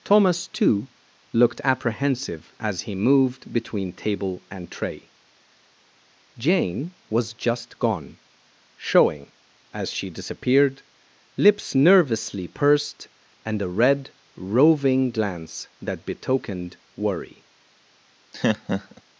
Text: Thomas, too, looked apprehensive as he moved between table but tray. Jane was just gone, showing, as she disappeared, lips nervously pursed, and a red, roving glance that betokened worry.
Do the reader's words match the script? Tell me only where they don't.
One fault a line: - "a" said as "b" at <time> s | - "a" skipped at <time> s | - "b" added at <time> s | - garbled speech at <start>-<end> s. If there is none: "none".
- "but" said as "and" at 4.5 s